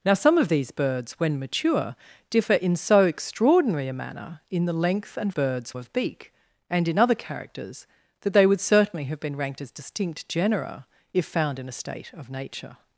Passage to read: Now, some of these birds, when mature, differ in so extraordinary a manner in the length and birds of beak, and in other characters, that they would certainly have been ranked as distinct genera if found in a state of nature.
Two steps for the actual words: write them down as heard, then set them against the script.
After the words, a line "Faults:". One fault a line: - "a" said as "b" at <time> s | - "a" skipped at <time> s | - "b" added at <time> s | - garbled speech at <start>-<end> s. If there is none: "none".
Now, some of these birds, when mature, differ in so extraordinary a manner in the length and birds of beak, and in other characters, that they would certainly have been ranked as distinct genera if found in a state of nature.
Faults:
none